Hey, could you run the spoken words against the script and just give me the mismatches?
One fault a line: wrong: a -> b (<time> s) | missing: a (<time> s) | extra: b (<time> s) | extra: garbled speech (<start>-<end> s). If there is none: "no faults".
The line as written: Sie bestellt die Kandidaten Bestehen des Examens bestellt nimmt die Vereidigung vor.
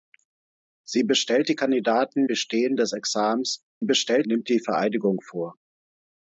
no faults